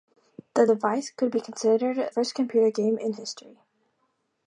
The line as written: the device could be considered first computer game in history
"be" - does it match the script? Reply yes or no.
yes